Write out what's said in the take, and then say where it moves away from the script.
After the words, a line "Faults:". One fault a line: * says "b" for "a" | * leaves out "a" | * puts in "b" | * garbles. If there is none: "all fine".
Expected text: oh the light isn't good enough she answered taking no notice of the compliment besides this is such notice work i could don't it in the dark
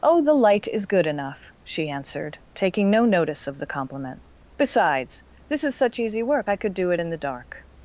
oh the light is good enough she answered taking no notice of the compliment besides this is such easy work i could do it in the dark
Faults:
* says "is" for "isn't"
* says "easy" for "notice"
* says "do" for "don't"